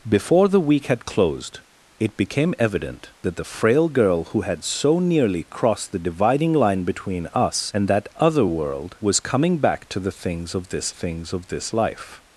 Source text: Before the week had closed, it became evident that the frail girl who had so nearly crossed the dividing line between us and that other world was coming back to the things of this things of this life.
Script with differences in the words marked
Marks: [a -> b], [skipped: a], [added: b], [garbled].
Before the week had closed, it became evident that the frail girl who had so nearly crossed the dividing line between us and that other world was coming back to the things of this things of this life.